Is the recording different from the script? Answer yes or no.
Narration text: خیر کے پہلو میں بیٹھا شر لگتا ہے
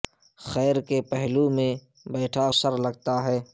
no